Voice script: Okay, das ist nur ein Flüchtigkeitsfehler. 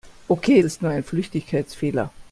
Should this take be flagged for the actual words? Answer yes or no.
yes